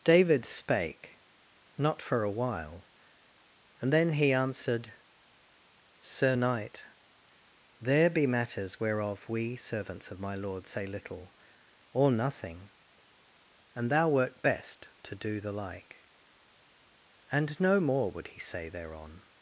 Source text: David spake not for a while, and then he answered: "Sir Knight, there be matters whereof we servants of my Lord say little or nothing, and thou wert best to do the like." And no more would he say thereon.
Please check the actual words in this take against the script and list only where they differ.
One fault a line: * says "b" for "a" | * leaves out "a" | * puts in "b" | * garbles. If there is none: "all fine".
all fine